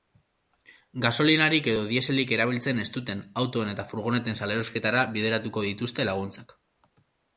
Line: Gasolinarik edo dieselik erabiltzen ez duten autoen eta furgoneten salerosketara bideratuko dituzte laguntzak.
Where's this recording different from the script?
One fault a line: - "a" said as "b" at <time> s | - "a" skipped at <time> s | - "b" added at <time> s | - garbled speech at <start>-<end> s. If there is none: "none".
none